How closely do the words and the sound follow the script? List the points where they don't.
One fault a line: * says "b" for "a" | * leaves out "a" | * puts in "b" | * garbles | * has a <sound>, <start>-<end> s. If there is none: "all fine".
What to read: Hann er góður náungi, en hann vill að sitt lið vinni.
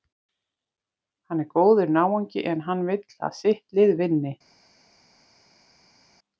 all fine